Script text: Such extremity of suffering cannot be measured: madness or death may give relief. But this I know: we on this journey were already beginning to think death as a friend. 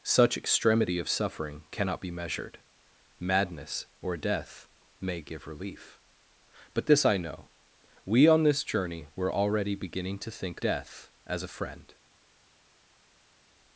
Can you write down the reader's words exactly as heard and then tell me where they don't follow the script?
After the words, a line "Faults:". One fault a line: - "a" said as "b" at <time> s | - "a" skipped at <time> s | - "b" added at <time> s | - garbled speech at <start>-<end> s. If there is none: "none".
Such extremity of suffering cannot be measured: madness or death may give relief. But this I know: we on this journey were already beginning to think death as a friend.
Faults:
none